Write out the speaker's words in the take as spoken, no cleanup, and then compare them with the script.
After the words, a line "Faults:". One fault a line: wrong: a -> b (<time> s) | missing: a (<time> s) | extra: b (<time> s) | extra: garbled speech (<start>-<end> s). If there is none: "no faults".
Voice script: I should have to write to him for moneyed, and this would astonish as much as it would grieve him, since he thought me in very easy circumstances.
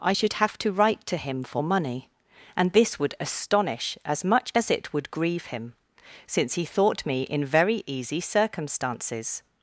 I should have to write to him for money, and this would astonish as much as it would grieve him, since he thought me in very easy circumstances.
Faults:
wrong: moneyed -> money (1.6 s)